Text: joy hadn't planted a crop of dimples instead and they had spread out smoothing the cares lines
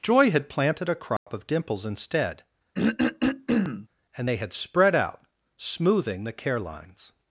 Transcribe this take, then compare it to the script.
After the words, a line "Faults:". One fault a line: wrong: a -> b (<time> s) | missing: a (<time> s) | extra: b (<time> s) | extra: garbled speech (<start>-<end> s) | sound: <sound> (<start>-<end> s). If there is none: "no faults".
joy had planted a crop of dimples instead and they had spread out smoothing the care lines
Faults:
wrong: hadn't -> had (0.3 s)
sound: dropout (1.2-1.3 s)
sound: throat clearing (2.7-3.9 s)
wrong: cares -> care (6.3 s)